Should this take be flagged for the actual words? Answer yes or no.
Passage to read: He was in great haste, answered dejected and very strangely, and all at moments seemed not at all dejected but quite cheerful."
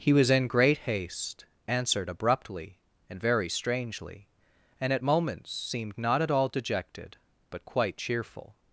yes